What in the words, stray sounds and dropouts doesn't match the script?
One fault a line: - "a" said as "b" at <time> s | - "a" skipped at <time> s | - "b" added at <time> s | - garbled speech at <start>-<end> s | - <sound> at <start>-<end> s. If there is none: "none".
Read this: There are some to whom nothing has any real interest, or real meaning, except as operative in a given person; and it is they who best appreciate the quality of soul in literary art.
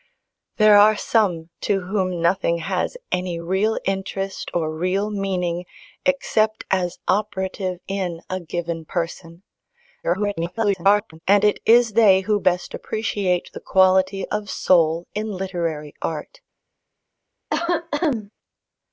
- garbled speech at 10.0-11.2 s
- cough at 17.5-18.3 s